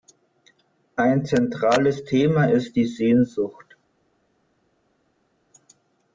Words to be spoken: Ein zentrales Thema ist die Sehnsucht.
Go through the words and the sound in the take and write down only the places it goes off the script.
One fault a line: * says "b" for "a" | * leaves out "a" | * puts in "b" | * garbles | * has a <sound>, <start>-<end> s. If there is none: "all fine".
all fine